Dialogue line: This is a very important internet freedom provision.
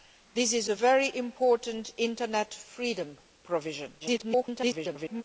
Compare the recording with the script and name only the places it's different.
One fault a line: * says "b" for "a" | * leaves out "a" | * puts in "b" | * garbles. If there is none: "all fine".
* garbles